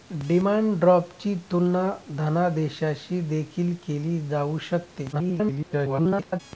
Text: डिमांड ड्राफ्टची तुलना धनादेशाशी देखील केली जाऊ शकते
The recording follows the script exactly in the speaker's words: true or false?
false